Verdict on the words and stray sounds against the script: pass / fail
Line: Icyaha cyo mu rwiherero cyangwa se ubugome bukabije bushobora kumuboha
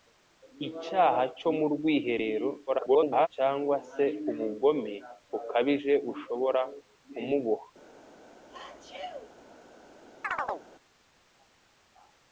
fail